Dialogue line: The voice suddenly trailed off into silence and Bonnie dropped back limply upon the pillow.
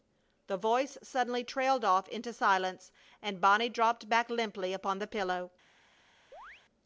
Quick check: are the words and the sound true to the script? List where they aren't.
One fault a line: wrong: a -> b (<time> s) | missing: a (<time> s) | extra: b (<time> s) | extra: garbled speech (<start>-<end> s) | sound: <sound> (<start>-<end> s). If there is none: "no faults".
sound: chirp (6.3-6.6 s)